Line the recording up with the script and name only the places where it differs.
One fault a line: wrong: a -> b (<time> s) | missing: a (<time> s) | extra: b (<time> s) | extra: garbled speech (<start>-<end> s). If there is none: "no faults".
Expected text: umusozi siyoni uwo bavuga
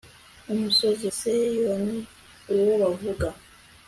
no faults